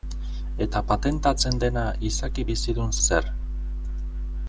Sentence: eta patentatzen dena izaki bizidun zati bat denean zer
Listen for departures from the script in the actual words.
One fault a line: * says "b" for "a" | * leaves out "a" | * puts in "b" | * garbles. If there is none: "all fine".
* leaves out "zati bat denean"